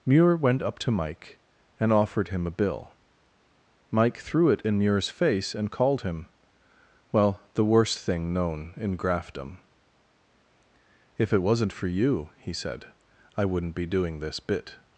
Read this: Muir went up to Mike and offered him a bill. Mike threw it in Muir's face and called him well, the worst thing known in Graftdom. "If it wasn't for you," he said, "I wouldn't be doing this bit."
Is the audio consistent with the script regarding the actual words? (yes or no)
yes